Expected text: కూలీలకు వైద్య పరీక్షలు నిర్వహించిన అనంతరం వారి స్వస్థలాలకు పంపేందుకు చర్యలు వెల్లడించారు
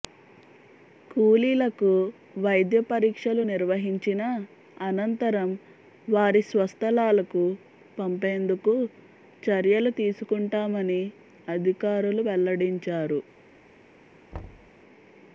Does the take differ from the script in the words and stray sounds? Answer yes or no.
yes